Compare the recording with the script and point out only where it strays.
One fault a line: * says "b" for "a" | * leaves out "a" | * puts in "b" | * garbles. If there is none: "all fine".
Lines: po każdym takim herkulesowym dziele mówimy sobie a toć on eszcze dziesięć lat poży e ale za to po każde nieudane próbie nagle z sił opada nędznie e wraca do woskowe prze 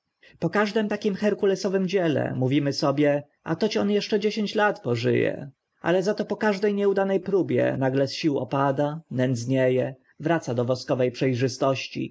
all fine